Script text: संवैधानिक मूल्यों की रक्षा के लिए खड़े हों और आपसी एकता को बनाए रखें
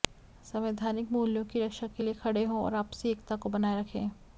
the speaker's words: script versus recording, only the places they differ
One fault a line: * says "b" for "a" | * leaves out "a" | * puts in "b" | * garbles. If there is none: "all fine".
all fine